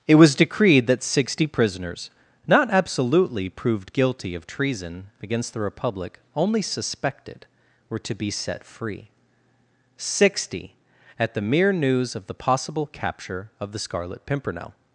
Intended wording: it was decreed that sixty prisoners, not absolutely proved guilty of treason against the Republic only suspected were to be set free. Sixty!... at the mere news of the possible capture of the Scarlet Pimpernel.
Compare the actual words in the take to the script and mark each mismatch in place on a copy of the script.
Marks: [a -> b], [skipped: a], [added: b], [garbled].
it was decreed that sixty prisoners, not absolutely proved guilty of treason against the Republic only suspected were to be set free. Sixty!... at the mere news of the possible capture of the Scarlet Pimpernel.